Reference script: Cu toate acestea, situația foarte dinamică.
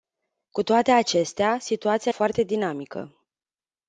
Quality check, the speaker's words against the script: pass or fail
pass